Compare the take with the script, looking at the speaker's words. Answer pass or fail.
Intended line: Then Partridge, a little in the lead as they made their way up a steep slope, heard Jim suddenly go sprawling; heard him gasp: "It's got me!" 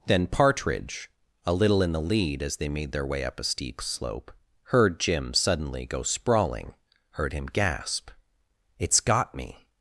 pass